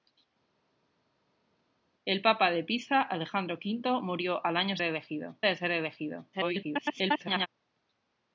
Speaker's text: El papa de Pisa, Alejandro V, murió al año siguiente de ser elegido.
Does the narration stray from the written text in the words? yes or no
yes